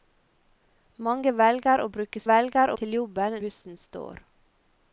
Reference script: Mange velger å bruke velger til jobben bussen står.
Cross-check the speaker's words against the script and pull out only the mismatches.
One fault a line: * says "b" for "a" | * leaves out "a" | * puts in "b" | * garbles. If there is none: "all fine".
all fine